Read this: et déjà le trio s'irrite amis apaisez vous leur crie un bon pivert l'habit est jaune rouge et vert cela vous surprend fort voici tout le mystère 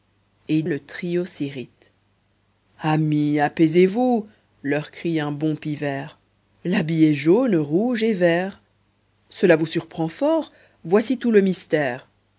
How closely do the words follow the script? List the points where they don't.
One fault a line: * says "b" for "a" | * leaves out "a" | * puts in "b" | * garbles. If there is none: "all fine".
* leaves out "déjà"